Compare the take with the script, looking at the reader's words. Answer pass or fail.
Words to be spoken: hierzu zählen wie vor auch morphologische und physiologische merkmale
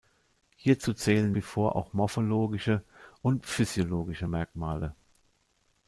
pass